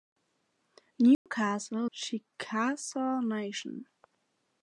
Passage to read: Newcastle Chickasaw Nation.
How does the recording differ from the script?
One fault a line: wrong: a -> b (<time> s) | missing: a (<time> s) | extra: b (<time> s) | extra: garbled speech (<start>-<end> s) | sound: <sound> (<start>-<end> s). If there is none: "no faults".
sound: dropout (1.1-1.3 s)